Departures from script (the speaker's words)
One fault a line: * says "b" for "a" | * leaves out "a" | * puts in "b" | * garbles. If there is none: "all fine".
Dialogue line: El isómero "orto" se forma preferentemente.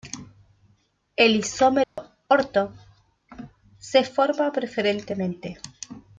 all fine